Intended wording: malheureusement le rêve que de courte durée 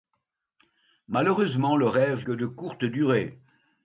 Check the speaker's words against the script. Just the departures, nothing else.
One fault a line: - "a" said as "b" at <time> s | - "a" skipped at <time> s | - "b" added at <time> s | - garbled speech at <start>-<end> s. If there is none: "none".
none